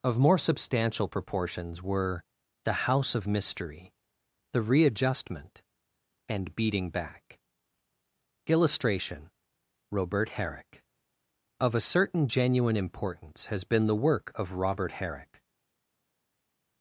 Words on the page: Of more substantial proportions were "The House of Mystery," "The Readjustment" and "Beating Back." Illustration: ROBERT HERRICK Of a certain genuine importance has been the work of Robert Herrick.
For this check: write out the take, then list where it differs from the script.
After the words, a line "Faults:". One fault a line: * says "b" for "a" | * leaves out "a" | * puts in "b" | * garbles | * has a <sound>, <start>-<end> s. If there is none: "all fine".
Of more substantial proportions were "The House of Mystery," "The Readjustment" and "Beating Back." Illustration: ROBERT HERRICK Of a certain genuine importance has been the work of Robert Herrick.
Faults:
all fine